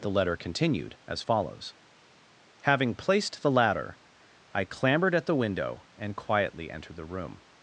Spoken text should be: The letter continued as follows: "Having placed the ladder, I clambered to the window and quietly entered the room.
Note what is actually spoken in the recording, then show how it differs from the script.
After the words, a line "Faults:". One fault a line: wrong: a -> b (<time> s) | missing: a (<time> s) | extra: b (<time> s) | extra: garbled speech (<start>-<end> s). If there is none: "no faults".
The letter continued as follows: "Having placed the ladder, I clambered at the window and quietly entered the room.
Faults:
wrong: to -> at (5.1 s)